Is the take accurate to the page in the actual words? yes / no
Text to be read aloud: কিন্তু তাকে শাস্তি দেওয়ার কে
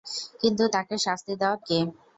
yes